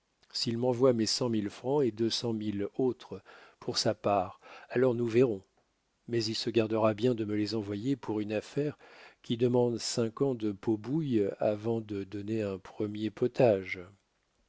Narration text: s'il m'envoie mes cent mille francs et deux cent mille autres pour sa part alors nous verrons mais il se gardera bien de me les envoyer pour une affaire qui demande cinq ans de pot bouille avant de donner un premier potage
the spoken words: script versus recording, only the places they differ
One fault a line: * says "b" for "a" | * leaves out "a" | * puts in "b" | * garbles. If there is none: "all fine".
all fine